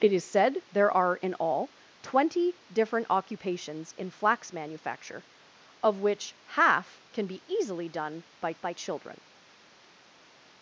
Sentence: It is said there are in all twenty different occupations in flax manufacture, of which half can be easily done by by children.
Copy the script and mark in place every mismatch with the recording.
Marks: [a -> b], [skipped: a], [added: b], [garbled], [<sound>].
It is said there are in all twenty different occupations in flax manufacture, of which half can be easily done by by children.